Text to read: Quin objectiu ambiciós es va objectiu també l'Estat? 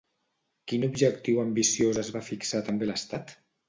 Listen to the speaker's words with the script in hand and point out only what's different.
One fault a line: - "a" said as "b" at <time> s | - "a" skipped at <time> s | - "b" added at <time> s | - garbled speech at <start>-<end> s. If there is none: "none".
- "objectiu" said as "fixar" at 2.3 s